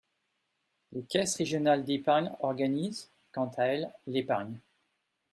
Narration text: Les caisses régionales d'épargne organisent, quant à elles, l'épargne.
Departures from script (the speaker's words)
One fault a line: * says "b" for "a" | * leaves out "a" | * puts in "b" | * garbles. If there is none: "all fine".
all fine